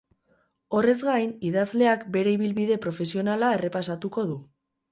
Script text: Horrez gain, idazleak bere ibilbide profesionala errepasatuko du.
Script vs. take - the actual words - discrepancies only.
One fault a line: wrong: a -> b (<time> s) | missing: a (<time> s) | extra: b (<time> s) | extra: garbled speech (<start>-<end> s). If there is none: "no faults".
no faults